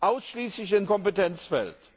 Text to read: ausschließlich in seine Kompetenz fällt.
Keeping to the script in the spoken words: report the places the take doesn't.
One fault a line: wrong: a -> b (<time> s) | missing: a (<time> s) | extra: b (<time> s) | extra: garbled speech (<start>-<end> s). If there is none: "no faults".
missing: seine (0.9 s)